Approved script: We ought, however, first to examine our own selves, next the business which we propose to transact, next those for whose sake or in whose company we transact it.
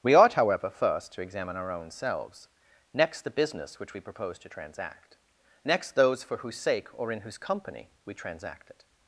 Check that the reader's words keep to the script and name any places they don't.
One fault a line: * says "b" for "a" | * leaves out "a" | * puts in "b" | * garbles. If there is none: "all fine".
all fine